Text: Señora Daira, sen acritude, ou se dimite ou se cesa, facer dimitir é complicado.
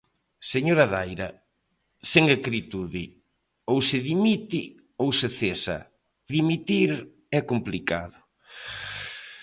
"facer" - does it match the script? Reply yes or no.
no